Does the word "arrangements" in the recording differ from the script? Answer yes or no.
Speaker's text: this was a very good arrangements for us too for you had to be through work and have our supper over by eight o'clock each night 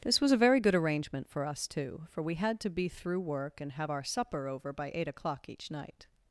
yes